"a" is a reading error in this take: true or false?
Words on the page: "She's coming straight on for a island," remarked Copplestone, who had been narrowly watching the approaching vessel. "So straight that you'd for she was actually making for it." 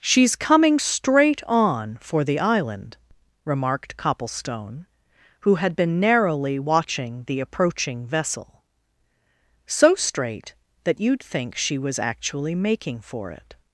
true